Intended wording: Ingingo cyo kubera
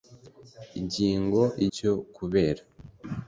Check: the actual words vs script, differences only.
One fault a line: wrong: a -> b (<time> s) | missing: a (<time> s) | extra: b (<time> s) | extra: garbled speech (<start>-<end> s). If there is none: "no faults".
no faults